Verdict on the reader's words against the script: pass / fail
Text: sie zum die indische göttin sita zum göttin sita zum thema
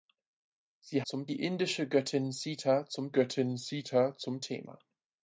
pass